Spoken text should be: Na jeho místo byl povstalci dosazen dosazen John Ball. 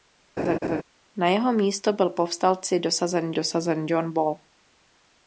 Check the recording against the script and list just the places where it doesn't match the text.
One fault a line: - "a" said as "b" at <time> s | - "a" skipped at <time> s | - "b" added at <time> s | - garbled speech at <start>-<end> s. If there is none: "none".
none